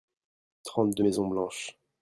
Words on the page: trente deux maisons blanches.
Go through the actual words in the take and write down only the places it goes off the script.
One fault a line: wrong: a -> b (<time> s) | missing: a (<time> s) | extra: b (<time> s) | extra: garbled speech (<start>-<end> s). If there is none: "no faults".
no faults